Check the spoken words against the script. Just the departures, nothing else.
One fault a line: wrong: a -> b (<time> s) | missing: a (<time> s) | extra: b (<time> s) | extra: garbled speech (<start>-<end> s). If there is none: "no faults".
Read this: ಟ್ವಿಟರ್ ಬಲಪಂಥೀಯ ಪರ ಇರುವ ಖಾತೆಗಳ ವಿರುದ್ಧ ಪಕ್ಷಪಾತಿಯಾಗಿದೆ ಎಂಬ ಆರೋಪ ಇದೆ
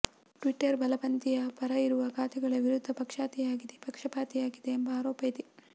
no faults